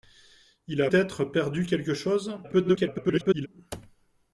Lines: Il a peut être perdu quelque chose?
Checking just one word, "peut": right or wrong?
wrong